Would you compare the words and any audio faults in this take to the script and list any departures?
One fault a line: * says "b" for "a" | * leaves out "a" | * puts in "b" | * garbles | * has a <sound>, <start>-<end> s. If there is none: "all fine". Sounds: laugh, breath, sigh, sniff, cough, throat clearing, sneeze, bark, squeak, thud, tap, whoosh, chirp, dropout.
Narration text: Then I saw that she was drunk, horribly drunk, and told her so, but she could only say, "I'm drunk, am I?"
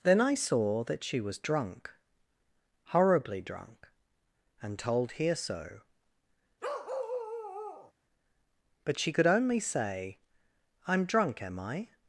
* says "here" for "her"
* has a bark, 6.6-7.9 s